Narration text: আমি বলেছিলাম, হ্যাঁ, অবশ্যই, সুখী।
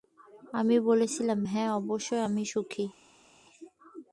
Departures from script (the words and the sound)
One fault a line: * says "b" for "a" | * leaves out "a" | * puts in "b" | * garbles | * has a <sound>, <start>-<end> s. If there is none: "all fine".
* puts in "আমি"